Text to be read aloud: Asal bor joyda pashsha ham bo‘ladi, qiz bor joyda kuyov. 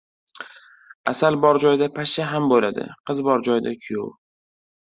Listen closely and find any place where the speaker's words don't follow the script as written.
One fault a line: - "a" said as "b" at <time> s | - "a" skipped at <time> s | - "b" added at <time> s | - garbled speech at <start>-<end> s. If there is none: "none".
none